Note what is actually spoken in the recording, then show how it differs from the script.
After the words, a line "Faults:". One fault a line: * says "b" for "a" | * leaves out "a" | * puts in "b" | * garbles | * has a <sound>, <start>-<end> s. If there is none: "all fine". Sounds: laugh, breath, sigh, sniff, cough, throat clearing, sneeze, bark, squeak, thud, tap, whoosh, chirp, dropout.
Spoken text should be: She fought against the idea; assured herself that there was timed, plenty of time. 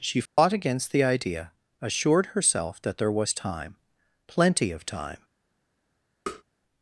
She fought against the idea; assured herself that there was time, plenty of time.
Faults:
* has a dropout, 0.3-0.4 s
* says "time" for "timed"
* has a tap, 6.3-6.4 s